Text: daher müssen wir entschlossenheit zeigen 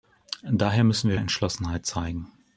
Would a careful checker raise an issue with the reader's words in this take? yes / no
no